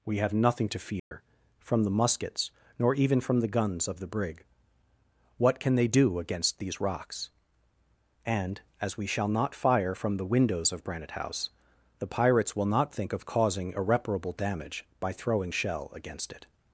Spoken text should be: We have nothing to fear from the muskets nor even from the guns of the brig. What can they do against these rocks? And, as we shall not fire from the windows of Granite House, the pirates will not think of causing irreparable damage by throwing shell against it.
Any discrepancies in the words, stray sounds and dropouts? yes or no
yes